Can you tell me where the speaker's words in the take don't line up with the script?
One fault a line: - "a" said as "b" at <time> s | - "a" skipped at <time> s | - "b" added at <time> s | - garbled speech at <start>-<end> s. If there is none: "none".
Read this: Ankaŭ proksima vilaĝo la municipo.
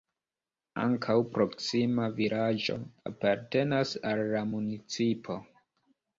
- "apartenas al" added at 3.1 s